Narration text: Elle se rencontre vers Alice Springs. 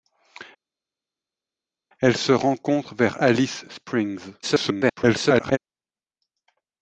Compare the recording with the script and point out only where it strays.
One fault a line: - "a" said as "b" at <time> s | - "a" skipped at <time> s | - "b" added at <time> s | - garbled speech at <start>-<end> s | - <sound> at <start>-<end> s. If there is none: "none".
- garbled speech at 4.4-5.6 s